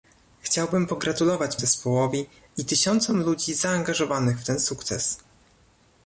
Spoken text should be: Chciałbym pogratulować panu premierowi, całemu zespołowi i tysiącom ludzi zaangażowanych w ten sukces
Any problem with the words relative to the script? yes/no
yes